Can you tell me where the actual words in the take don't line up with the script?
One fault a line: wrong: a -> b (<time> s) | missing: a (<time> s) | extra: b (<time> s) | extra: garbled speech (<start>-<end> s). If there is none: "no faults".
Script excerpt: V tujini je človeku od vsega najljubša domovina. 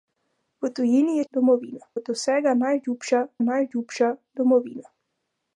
wrong: človeku -> domovina (1.3 s)
extra: najljubša (3.4 s)